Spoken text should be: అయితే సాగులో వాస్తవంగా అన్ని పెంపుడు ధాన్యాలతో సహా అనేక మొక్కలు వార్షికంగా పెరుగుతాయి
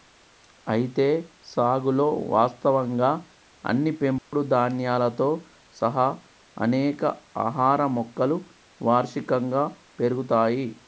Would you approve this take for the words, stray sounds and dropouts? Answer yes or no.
no